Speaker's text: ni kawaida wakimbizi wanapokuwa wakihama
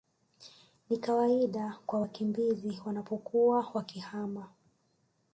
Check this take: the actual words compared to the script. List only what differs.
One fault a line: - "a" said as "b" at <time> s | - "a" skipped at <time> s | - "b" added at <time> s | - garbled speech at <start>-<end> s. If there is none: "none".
- "kwa" added at 1.9 s